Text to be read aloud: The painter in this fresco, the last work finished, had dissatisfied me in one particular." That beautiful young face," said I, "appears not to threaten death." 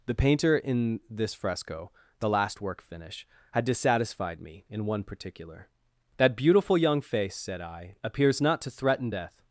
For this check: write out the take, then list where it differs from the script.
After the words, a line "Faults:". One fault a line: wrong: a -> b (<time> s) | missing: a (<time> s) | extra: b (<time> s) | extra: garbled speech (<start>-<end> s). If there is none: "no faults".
The painter in this fresco, the last work finish, had dissatisfied me in one particular." That beautiful young face," said I, "appears not to threaten death."
Faults:
wrong: finished -> finish (2.8 s)